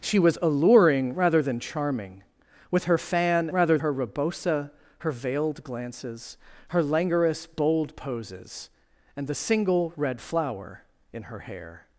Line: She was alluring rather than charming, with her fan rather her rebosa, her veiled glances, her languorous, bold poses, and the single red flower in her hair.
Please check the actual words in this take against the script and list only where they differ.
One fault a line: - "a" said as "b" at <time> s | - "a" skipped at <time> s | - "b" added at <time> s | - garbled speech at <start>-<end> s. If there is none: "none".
none